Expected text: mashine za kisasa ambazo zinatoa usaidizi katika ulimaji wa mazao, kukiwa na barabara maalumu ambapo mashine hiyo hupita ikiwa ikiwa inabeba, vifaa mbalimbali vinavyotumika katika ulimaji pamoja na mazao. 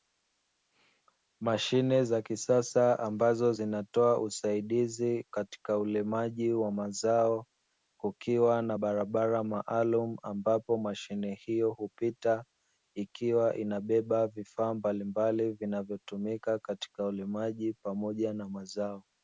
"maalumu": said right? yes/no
yes